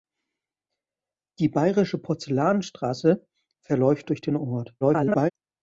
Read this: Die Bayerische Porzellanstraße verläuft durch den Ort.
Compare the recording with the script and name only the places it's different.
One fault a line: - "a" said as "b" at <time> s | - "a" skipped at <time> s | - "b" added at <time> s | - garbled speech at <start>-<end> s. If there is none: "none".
- garbled speech at 4.8-5.3 s